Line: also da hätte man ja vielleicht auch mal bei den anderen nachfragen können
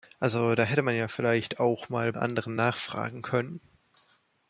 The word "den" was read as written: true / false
false